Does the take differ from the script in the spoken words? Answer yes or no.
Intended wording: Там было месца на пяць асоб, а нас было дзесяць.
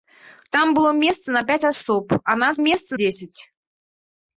yes